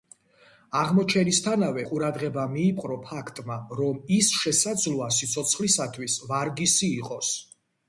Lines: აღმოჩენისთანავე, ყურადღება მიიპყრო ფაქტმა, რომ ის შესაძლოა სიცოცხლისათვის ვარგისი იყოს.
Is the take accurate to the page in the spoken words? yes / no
yes